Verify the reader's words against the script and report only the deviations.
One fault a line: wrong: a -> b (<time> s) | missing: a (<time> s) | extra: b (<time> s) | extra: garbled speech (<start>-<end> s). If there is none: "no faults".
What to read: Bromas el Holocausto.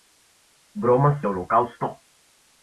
no faults